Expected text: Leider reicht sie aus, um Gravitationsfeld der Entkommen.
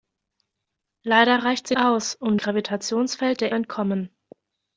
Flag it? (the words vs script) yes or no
no